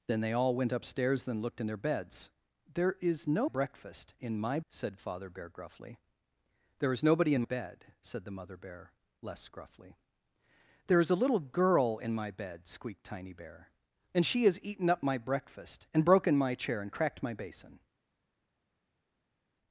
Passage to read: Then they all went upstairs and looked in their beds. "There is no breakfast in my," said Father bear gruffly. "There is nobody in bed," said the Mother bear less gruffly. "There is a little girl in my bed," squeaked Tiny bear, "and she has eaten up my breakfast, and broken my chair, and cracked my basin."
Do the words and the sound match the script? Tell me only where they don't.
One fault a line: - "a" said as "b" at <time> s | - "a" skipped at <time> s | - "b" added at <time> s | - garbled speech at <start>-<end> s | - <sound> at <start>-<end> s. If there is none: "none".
none